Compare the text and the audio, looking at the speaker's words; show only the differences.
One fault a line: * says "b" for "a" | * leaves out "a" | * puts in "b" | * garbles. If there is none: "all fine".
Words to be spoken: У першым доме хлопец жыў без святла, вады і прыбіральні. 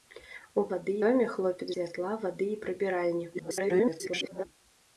* says "вады" for "першым"
* leaves out "жыў без"
* garbles